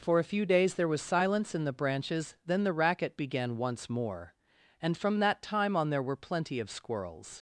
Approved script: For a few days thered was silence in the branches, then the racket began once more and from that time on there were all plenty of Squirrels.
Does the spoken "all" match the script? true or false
false